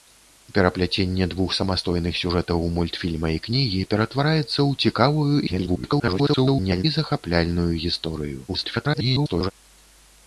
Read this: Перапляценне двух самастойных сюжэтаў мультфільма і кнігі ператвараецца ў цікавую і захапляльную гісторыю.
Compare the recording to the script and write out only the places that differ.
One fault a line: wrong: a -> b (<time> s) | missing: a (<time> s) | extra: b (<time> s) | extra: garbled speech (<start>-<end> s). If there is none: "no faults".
extra: garbled speech (5.5-6.8 s)
extra: garbled speech (8.5-9.5 s)